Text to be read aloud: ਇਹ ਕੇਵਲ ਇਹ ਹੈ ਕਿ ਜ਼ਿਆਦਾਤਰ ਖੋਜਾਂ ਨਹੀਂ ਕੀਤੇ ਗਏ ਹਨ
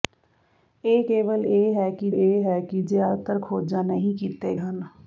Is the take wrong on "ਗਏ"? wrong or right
wrong